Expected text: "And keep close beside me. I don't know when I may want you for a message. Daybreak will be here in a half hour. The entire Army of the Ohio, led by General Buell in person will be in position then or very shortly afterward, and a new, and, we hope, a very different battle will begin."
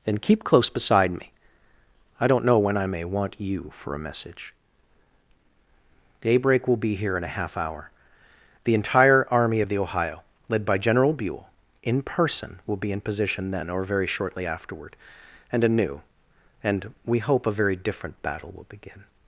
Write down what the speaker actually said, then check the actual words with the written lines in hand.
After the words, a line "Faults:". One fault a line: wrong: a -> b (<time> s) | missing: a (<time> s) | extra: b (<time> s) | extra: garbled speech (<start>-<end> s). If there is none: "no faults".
"And keep close beside me. I don't know when I may want you for a message. Daybreak will be here in a half hour. The entire Army of the Ohio, led by General Buell in person will be in position then or very shortly afterward, and a new, and, we hope, a very different battle will begin."
Faults:
no faults